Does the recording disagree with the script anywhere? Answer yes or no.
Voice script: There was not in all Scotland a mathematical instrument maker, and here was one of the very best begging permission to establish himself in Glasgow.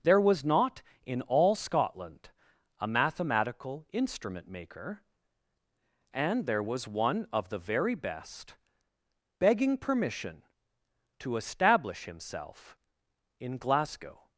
yes